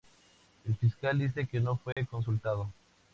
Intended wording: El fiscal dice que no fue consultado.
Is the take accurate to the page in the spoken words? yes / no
yes